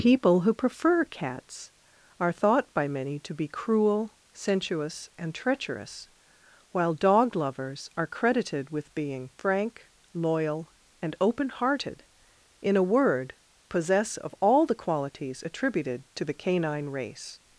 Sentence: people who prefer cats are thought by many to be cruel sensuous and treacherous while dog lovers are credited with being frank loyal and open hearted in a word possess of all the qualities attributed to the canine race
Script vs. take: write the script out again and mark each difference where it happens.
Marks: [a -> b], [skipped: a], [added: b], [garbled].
people who prefer cats are thought by many to be cruel sensuous and treacherous while dog lovers are credited with being frank loyal and open hearted in a word possess of all the qualities attributed to the canine race